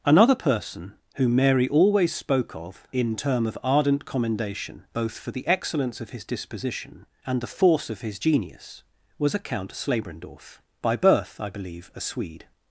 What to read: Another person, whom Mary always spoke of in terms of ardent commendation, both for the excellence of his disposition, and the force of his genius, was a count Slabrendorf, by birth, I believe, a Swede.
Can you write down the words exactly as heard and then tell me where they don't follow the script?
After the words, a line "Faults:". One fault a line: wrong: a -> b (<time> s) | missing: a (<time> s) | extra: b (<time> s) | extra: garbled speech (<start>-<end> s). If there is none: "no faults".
Another person, whom Mary always spoke of in term of ardent commendation, both for the excellence of his disposition, and the force of his genius, was a count Slabrendorf, by birth, I believe, a Swede.
Faults:
wrong: terms -> term (3.2 s)